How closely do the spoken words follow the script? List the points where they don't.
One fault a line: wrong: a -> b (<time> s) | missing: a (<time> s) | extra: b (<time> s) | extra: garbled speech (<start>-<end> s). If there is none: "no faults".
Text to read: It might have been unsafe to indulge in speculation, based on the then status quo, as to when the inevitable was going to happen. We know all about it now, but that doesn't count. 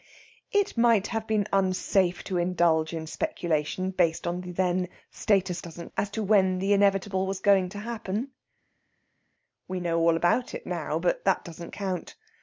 wrong: quo -> doesn't (5.6 s)